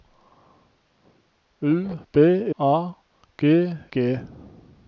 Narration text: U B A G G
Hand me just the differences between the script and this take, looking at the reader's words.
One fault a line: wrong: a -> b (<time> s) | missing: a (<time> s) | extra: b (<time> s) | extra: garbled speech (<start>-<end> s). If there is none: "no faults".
no faults